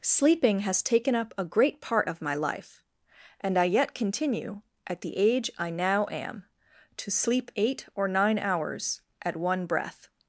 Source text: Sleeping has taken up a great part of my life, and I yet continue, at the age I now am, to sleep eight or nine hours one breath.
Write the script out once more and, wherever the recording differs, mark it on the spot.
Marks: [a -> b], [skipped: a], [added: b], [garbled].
Sleeping has taken up a great part of my life, and I yet continue, at the age I now am, to sleep eight or nine hours [added: at] one breath.